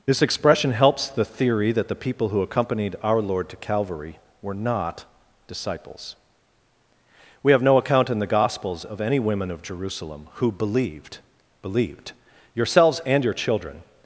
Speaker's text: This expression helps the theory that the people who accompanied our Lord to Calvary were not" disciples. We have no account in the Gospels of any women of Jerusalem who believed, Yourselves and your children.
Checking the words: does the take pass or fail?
fail